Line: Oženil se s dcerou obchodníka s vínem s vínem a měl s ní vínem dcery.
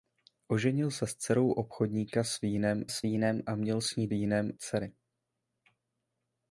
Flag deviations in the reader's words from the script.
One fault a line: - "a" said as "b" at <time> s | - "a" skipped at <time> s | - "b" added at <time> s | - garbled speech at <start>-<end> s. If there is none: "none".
none